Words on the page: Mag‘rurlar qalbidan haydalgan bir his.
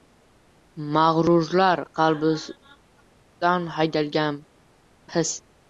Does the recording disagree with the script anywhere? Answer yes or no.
yes